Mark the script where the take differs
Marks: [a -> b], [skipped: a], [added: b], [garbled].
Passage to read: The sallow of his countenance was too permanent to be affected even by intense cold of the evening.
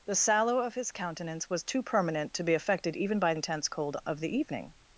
The sallow of his countenance was too permanent to be affected even by intense cold of the evening.